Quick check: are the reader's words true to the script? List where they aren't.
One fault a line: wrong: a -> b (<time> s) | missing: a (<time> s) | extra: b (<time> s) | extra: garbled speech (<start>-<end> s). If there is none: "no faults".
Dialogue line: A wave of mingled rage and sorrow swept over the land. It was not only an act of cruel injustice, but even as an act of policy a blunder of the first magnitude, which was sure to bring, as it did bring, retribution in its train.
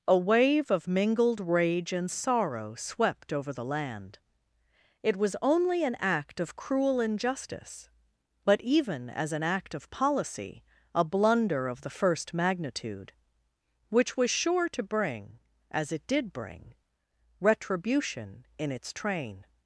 missing: not (5.3 s)